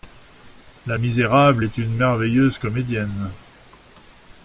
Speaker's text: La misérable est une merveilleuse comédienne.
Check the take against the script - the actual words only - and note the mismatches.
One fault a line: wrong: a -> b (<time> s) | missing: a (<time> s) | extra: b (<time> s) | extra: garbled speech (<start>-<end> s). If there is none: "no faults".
no faults